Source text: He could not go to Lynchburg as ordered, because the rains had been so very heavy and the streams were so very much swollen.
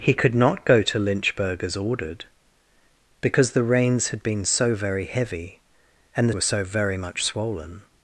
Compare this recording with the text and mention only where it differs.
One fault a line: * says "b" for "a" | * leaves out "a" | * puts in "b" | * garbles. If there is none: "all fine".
* leaves out "streams"